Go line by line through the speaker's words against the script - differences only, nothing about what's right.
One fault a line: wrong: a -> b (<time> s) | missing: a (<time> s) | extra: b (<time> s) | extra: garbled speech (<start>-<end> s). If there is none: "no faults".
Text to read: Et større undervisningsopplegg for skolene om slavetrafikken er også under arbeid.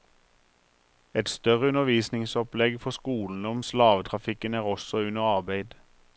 no faults